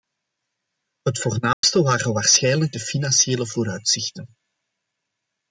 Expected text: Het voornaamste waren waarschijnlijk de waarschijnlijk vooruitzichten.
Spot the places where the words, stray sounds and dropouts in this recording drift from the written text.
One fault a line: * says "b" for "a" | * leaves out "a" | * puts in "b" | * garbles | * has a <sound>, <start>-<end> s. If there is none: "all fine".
* has a dropout, 1.5-1.6 s
* says "financiële" for "waarschijnlijk"